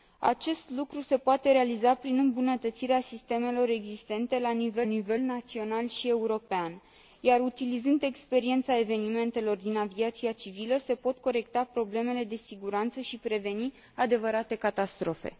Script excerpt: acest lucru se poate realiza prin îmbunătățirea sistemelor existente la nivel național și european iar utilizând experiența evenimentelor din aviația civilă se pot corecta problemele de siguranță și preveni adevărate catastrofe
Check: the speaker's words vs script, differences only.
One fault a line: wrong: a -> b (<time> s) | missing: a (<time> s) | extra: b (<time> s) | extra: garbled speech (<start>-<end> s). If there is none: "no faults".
extra: nivel (4.8 s)